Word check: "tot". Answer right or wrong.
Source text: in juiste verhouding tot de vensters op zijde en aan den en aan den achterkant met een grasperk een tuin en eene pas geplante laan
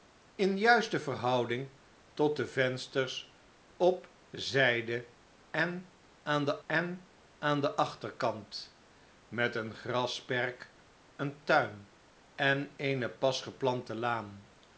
right